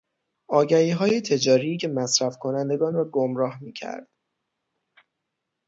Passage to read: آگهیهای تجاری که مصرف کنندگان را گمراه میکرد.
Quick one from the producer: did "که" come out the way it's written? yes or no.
yes